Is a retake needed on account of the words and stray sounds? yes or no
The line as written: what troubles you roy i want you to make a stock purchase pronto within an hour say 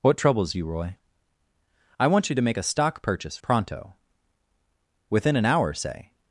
no